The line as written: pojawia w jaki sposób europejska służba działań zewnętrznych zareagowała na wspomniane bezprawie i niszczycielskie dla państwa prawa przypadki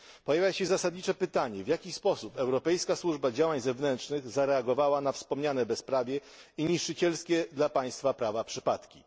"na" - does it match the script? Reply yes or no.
yes